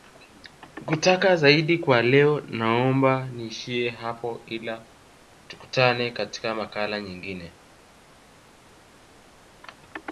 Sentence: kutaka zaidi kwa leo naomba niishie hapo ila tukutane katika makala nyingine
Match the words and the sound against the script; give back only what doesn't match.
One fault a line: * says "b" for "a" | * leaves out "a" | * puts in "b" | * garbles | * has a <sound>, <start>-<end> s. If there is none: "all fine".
all fine